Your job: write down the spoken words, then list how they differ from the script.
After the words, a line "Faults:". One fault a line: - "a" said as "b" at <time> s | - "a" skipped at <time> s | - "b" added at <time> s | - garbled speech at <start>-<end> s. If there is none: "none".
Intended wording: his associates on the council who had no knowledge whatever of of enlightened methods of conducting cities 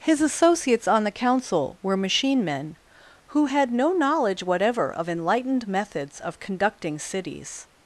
his associates on the council were machine men who had no knowledge whatever of enlightened methods of conducting cities
Faults:
- "were machine men" added at 1.8 s
- "of" skipped at 5.1 s